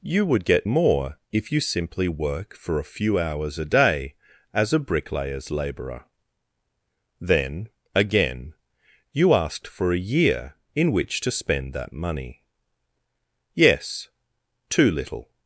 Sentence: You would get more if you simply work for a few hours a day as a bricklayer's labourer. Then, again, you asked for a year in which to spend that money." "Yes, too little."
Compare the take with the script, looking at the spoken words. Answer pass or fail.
pass